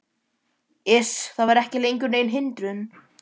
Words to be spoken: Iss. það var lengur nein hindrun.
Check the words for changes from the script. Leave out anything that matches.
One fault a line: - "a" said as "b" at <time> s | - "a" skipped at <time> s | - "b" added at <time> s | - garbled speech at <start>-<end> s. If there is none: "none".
- "ekki" added at 1.6 s